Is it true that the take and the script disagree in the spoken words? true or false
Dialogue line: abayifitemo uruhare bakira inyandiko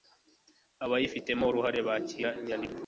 false